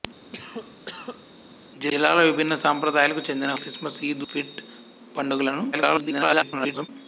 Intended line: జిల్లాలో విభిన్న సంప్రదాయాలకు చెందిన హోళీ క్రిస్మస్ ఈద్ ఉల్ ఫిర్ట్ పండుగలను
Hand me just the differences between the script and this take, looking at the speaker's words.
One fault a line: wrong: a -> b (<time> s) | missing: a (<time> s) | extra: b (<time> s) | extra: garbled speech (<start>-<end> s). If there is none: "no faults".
missing: హోళీ (3.5 s)
missing: ఉల్ (4.2 s)
extra: garbled speech (5.7-6.9 s)